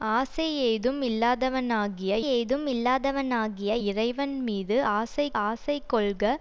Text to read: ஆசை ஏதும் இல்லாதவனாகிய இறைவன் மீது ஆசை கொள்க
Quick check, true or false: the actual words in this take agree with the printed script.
false